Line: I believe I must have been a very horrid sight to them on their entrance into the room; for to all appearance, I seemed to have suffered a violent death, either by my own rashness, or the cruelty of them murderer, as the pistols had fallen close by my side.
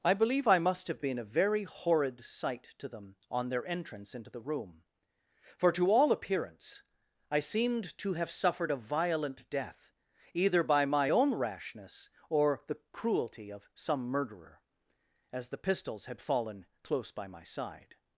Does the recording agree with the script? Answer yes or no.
no